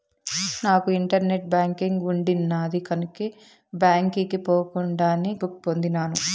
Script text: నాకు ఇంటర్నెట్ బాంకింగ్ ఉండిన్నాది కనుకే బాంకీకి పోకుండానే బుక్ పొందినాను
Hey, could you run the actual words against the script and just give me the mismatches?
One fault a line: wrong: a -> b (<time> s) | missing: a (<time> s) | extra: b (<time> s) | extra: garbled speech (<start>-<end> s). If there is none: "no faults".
no faults